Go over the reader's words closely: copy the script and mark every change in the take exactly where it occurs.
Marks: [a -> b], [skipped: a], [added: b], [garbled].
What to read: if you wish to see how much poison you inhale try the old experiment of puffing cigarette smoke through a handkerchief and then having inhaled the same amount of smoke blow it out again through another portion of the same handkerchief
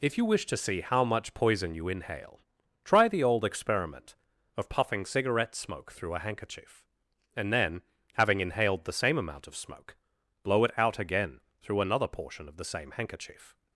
if you wish to see how much poison you inhale try the old experiment of puffing cigarette smoke through a handkerchief and then having inhaled the same amount of smoke blow it out again through another portion of the same handkerchief